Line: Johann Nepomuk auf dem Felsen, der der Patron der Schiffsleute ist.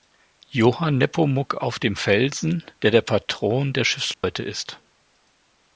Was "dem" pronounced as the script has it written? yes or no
yes